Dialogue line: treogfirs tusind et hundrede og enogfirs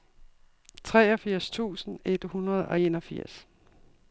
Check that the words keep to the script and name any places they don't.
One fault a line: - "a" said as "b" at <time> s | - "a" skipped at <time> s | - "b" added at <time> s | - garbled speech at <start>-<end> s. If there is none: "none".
none